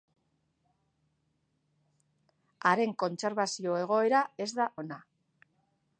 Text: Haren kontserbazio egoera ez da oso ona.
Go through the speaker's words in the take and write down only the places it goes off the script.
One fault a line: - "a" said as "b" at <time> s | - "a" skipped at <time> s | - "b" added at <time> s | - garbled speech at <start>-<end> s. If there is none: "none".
- "oso" skipped at 4.7 s